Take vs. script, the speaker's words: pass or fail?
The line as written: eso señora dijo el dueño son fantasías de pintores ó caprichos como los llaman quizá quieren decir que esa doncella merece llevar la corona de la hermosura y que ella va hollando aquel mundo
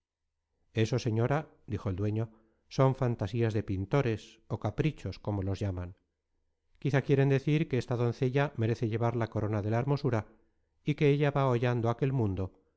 fail